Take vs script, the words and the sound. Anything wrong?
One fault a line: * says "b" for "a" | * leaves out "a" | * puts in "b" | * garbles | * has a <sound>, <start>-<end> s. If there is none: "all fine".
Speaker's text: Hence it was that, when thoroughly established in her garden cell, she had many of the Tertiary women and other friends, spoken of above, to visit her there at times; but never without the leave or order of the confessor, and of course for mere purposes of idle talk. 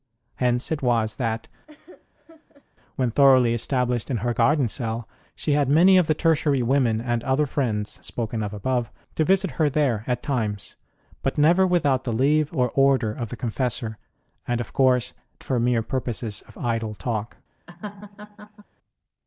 * has a laugh, 1.7-2.7 s
* has a laugh, 17.7-18.6 s